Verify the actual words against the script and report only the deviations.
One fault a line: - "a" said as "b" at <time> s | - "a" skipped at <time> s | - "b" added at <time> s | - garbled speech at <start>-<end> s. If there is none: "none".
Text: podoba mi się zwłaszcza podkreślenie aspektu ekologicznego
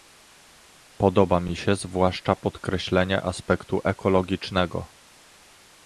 none